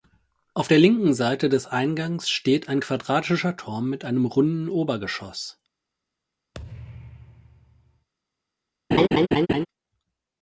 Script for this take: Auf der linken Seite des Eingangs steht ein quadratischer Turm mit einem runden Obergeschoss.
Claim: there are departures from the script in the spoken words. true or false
false